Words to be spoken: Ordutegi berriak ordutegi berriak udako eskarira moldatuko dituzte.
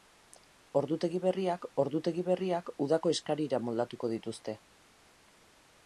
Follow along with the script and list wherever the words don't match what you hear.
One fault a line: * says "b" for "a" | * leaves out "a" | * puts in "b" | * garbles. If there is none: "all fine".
all fine